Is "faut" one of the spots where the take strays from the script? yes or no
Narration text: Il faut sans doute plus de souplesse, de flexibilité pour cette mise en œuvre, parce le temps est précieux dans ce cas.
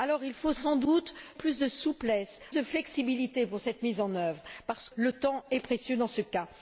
no